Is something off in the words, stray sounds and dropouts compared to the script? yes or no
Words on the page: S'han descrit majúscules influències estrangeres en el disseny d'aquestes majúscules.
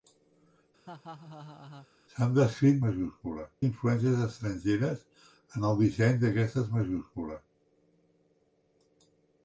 yes